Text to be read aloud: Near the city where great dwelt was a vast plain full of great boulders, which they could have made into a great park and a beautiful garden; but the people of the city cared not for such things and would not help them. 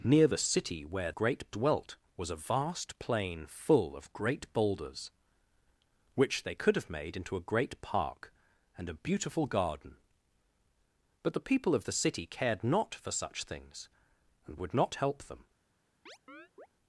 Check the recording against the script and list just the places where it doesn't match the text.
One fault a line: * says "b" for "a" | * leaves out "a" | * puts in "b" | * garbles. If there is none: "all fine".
all fine